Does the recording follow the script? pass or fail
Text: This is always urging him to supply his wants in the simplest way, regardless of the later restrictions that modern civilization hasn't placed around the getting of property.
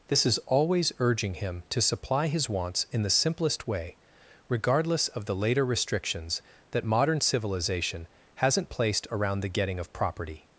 pass